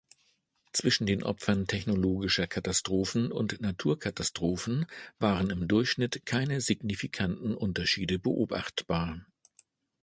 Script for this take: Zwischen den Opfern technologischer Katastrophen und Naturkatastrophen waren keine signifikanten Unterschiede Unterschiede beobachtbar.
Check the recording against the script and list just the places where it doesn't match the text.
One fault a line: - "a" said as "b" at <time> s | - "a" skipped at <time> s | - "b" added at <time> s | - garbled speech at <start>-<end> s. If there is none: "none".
- "im Durchschnitt" added at 5.5 s
- "Unterschiede" skipped at 8.2 s